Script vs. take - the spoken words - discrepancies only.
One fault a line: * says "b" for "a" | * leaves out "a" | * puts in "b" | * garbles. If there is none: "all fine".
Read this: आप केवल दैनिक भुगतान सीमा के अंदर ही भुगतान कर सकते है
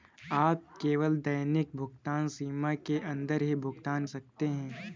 * leaves out "कर"